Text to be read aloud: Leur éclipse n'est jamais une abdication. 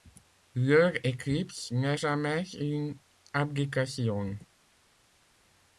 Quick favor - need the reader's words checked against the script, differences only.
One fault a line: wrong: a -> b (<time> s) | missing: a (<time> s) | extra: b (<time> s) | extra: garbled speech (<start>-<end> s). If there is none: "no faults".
no faults